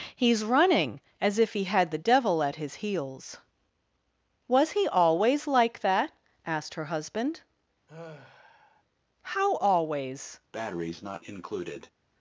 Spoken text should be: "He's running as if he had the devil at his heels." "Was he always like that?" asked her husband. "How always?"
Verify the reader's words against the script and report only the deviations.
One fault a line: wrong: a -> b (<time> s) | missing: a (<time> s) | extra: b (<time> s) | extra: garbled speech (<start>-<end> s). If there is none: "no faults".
no faults